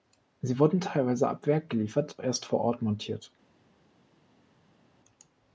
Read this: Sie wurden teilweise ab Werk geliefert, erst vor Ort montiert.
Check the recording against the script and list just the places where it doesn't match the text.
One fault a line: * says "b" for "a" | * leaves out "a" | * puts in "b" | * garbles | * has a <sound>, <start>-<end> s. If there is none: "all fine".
all fine